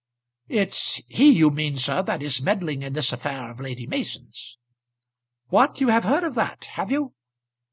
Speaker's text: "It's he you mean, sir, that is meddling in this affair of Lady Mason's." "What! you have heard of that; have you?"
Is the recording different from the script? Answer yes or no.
no